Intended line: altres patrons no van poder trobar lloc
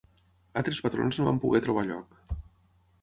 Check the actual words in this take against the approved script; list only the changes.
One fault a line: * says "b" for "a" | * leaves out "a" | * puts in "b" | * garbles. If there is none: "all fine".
all fine